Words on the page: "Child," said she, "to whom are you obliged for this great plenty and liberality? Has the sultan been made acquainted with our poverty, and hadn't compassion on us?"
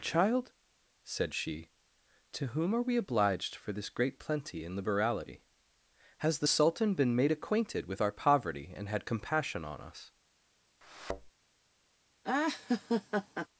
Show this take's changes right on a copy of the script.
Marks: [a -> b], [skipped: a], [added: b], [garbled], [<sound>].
"Child," said she, "to whom are [you -> we] obliged for this great plenty and liberality? Has the sultan been made acquainted with our poverty, and [hadn't -> had] compassion on us?" [thud] [laugh]